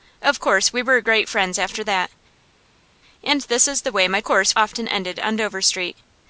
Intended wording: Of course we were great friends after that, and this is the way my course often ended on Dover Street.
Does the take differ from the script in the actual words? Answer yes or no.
no